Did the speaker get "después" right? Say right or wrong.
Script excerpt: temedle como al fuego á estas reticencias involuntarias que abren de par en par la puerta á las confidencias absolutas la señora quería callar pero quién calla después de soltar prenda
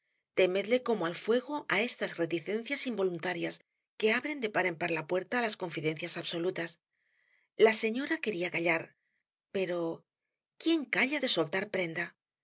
wrong